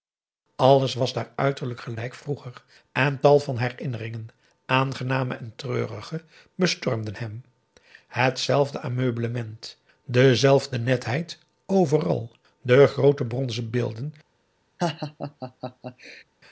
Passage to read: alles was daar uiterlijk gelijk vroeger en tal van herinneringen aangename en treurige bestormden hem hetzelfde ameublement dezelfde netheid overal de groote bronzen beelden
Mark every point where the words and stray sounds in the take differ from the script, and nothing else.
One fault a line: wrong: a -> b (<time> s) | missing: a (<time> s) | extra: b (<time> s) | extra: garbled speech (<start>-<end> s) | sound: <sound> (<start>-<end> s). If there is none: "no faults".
sound: laugh (14.8-16.2 s)